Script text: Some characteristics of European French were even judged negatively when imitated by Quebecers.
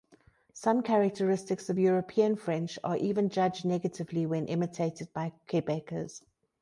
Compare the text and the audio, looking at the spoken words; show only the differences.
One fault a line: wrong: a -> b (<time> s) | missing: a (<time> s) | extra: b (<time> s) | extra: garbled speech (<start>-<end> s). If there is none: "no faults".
wrong: were -> are (2.8 s)